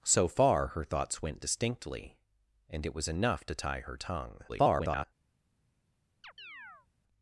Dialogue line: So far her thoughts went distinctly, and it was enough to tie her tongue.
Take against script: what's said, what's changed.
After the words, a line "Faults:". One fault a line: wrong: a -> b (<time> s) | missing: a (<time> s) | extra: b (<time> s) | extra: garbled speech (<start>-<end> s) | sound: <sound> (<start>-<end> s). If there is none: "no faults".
So far her thoughts went distinctly, and it was enough to tie her tongue. [garbled]
Faults:
extra: garbled speech (4.5-5.0 s)
sound: chirp (6.2-6.9 s)